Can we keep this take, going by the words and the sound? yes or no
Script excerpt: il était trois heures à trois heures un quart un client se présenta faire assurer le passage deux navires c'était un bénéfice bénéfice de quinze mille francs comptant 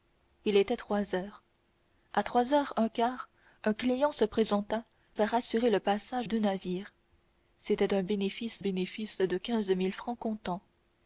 yes